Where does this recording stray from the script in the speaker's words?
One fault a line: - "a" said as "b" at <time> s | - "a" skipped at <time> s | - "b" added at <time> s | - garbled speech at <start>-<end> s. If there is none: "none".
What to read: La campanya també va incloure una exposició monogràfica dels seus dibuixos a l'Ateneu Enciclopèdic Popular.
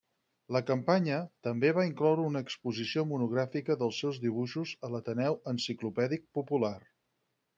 none